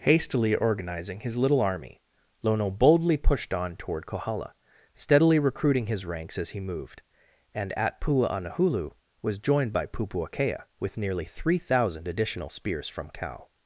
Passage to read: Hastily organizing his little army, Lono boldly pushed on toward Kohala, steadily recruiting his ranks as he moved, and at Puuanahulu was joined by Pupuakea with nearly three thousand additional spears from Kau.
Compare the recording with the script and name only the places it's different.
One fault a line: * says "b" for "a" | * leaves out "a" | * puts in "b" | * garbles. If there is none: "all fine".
all fine